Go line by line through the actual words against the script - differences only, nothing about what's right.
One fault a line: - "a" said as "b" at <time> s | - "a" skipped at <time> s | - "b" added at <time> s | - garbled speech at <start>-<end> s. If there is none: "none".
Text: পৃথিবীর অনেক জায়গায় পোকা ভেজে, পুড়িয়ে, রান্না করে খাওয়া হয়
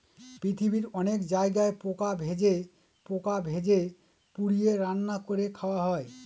- "পোকা ভেজে" added at 3.1 s